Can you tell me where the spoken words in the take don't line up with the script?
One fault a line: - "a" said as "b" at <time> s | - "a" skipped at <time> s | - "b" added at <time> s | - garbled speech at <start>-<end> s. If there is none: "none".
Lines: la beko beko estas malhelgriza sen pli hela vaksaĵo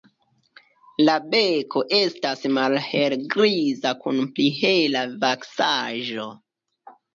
- "beko" skipped at 1.8 s
- "sen" said as "kun" at 4.1 s